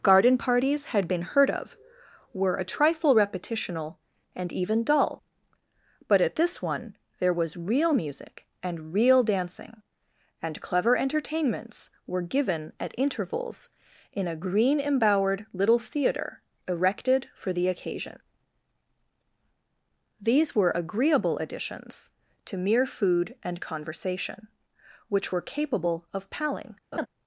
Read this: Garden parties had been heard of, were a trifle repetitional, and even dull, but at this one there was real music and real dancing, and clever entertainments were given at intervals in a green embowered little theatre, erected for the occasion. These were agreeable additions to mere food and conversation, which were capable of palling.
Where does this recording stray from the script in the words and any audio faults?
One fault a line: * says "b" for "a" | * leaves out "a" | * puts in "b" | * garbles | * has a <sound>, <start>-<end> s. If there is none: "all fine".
* has a laugh, 26.9-27.1 s